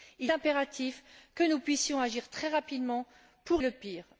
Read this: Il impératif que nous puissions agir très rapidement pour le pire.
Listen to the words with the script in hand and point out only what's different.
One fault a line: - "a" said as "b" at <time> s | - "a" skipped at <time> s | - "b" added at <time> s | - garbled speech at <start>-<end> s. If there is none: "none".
none